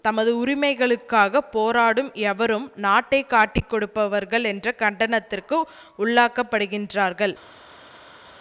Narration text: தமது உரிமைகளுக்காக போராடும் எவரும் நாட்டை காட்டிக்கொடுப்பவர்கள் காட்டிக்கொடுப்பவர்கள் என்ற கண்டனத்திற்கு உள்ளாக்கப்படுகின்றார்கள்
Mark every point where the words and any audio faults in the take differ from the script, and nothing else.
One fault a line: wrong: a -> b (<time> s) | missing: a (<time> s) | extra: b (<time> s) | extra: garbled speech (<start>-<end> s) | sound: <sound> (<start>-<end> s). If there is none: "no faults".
missing: காட்டிக்கொடுப்பவர்கள் (4.5 s)